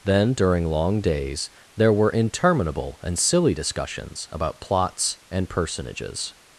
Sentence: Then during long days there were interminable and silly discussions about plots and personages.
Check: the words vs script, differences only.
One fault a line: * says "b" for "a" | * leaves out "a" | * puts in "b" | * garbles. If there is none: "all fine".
all fine